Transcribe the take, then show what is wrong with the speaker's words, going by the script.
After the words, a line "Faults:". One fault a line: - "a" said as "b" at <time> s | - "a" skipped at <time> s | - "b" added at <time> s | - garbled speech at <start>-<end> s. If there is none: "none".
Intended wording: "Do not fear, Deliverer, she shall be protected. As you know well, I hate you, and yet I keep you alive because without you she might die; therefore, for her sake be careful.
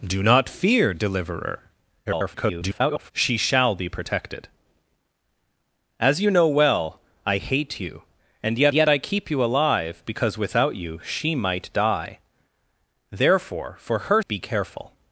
"Do not fear, Deliverer, [garbled] she shall be protected. As you know well, I hate you, and yet yet I keep you alive because without you she might die; therefore, for her be careful.
Faults:
- garbled speech at 2.1-3.1 s
- "yet" added at 8.7 s
- "sake" skipped at 14.2 s